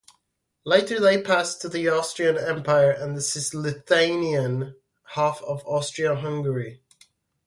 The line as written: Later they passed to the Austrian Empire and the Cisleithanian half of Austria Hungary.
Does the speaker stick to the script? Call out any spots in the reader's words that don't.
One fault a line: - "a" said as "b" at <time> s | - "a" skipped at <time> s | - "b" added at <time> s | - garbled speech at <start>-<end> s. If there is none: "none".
none